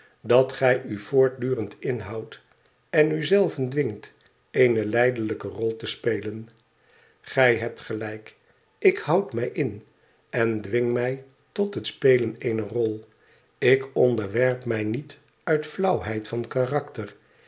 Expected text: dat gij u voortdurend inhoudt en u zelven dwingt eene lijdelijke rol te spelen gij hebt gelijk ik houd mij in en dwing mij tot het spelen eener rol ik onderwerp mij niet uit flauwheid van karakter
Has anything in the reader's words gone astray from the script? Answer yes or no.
no